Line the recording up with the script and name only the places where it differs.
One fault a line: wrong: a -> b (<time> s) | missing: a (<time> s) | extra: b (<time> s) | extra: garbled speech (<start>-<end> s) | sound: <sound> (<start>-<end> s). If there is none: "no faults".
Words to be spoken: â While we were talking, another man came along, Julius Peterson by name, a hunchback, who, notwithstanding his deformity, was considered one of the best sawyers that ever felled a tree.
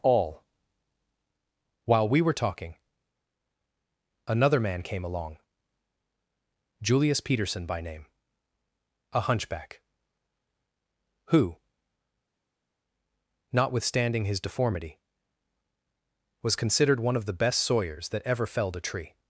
wrong: â -> all (0.0 s)